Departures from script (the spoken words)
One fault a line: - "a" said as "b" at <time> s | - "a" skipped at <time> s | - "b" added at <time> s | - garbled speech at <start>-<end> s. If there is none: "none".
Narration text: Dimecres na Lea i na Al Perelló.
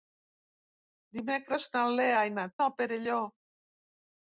none